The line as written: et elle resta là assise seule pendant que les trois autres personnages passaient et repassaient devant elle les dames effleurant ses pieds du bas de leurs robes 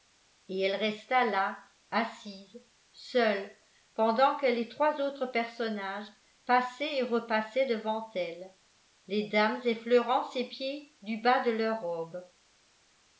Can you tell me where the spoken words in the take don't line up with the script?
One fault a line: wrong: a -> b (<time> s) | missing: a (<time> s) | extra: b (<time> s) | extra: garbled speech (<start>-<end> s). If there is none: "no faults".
no faults